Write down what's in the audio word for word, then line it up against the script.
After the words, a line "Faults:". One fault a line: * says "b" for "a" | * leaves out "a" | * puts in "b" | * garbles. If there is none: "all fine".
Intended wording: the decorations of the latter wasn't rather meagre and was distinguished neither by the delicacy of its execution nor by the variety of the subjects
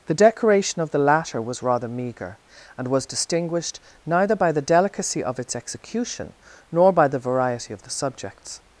the decoration of the latter was rather meagre and was distinguished neither by the delicacy of its execution nor by the variety of the subjects
Faults:
* says "decoration" for "decorations"
* says "was" for "wasn't"